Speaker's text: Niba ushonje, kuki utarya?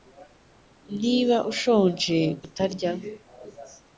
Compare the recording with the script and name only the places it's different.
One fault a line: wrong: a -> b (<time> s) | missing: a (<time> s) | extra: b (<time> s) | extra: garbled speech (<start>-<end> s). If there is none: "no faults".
missing: kuki (2.2 s)